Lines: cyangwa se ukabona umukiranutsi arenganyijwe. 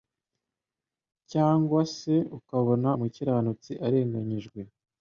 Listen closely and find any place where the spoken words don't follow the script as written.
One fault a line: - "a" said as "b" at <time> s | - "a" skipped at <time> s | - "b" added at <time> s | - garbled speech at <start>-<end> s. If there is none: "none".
none